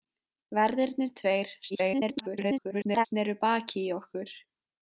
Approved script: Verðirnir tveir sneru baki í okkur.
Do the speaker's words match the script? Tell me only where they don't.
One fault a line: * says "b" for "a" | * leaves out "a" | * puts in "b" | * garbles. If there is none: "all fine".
* garbles